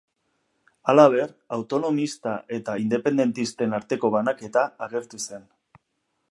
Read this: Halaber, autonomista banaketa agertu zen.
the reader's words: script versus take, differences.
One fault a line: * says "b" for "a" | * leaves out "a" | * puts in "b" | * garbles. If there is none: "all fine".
* puts in "eta independentisten arteko"